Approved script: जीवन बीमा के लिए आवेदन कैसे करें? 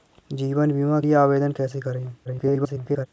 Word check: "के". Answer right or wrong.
wrong